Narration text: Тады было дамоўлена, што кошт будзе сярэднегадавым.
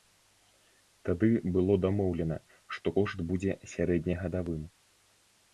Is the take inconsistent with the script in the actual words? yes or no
no